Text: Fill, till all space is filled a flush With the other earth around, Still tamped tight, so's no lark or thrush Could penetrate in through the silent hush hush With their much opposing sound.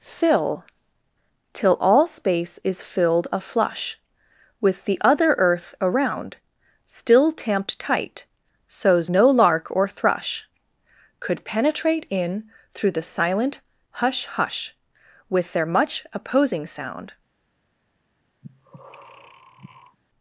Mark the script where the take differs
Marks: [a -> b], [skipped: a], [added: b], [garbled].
Fill, till all space is filled a flush With the other earth around, Still tamped tight, so's no lark or thrush Could penetrate in through the silent hush hush With their much opposing sound.